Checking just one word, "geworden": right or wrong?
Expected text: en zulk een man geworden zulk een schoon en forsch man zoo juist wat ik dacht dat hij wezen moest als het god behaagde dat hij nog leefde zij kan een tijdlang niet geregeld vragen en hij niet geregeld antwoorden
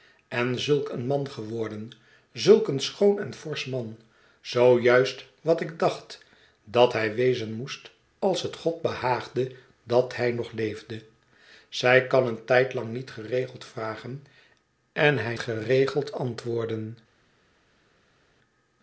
right